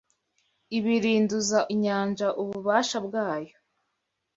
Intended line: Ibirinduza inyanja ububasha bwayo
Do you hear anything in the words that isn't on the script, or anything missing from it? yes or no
no